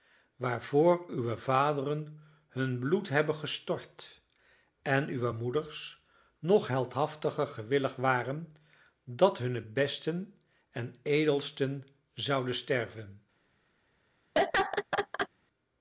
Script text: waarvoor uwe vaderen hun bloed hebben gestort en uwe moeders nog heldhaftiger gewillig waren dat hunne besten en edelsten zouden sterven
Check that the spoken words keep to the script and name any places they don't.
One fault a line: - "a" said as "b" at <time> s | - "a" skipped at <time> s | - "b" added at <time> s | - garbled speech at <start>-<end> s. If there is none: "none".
none